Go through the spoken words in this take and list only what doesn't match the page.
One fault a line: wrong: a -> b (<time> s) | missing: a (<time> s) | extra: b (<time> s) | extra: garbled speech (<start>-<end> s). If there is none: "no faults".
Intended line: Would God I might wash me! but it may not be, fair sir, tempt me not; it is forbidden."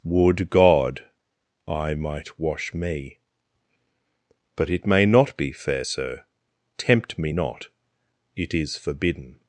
no faults